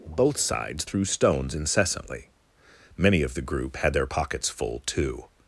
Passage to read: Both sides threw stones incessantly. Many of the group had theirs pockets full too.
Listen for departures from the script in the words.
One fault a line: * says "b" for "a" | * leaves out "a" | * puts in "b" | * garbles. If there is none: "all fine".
* says "their" for "theirs"